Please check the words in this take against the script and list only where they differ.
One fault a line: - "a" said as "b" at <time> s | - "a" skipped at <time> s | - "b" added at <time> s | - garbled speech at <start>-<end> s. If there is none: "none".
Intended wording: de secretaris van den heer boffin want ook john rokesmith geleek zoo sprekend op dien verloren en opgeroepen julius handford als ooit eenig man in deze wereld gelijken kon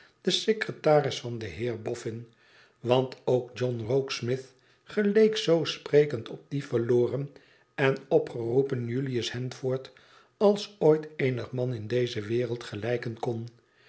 none